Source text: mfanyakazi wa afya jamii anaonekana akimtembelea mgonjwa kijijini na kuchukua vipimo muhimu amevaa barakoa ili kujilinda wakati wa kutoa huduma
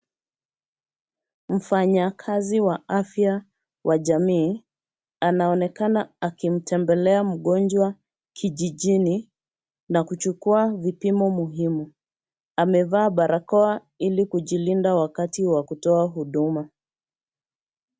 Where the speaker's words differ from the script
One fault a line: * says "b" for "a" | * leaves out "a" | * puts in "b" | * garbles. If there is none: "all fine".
* puts in "wa"